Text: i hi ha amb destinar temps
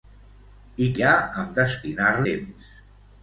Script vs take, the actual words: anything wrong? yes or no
no